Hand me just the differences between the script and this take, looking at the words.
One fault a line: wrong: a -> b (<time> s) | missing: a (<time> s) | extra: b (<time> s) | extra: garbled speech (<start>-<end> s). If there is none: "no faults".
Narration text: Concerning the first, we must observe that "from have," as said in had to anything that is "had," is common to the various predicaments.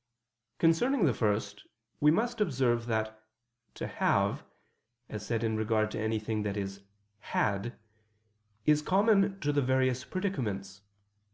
wrong: from -> to (3.7 s)
wrong: had -> regard (5.6 s)